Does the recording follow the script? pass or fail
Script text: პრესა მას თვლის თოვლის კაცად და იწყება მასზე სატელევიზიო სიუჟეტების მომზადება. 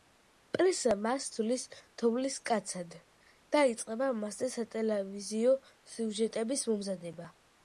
pass